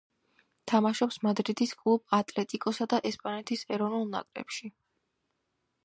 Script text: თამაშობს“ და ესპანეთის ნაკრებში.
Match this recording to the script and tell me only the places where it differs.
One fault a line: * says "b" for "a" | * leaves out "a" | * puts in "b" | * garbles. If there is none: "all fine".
* puts in "მადრიდის კლუბ ატლეტიკოსა"
* puts in "ეროვნულ"